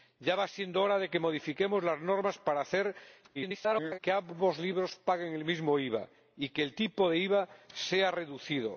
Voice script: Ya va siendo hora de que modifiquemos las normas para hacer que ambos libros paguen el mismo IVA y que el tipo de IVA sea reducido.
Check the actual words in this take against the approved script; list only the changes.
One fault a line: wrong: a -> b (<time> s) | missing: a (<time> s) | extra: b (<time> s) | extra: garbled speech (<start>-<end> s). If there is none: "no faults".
extra: garbled speech (3.3-4.0 s)